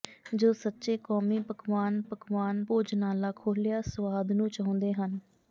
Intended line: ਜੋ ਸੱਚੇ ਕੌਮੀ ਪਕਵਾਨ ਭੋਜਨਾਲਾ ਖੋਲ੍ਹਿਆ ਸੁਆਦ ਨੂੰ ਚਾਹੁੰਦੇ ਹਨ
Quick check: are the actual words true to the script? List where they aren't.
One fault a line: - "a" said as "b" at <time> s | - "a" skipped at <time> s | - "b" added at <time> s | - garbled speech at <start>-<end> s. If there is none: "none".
- "ਪਕਵਾਨ" added at 2.0 s